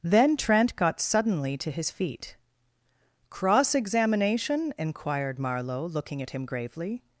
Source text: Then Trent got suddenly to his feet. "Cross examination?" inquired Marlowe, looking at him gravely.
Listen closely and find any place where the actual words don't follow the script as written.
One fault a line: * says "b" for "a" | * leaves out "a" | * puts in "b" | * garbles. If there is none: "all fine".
all fine